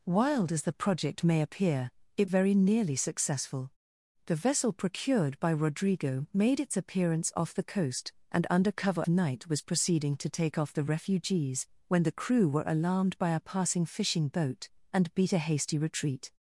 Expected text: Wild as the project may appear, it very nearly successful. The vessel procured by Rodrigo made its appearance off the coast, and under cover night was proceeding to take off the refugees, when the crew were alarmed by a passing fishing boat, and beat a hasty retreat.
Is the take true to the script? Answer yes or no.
yes